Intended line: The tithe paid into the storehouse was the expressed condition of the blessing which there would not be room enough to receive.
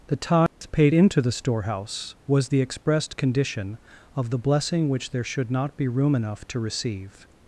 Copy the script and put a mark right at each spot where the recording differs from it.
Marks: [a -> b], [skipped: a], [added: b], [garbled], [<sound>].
The tithe [dropout] paid into the storehouse was the expressed condition of the blessing which there [would -> should] not be room enough to receive.